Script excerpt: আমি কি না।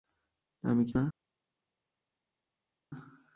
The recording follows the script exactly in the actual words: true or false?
true